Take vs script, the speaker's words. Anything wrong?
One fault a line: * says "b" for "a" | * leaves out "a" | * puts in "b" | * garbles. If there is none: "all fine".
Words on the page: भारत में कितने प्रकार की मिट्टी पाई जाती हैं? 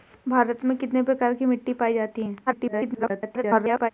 * garbles